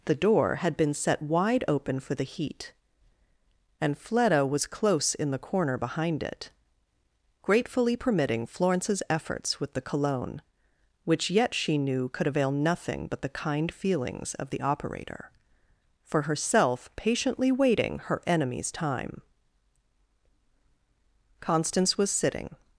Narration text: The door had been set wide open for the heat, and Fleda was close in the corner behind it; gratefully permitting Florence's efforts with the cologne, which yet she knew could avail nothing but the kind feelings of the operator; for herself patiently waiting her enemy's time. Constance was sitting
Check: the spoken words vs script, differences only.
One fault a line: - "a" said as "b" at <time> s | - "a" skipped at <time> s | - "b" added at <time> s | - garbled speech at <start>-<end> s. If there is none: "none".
none